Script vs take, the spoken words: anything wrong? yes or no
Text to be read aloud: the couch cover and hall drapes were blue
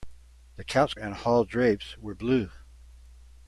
yes